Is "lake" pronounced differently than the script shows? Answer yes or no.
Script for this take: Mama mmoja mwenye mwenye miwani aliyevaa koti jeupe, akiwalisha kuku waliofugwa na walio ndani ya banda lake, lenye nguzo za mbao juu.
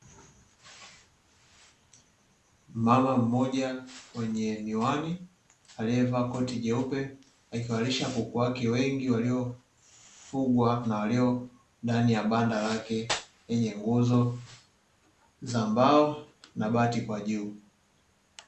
no